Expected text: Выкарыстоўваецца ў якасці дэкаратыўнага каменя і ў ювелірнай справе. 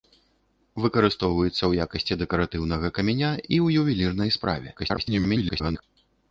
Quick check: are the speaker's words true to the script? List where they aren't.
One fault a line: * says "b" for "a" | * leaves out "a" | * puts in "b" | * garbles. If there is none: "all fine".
* garbles